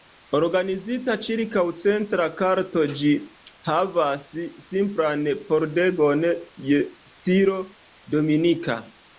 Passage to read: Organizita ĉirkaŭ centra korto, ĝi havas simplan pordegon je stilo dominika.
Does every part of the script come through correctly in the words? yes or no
yes